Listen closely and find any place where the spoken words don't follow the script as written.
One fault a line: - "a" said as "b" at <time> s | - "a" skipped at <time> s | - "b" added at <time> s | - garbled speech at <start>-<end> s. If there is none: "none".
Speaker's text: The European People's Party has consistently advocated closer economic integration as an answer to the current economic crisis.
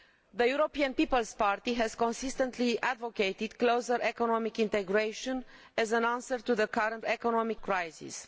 none